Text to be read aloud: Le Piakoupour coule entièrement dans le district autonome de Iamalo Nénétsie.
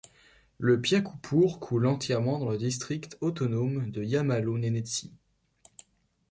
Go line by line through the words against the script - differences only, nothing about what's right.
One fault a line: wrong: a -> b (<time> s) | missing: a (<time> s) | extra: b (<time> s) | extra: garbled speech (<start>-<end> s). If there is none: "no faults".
no faults